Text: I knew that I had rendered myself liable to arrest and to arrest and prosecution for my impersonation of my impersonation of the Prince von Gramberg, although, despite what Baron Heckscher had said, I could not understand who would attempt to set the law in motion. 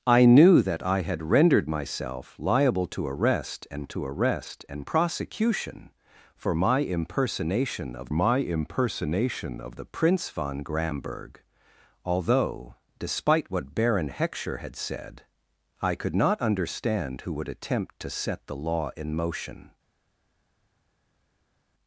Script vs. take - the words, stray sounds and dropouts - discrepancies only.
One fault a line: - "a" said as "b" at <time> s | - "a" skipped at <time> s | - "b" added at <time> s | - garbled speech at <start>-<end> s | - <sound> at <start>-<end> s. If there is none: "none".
none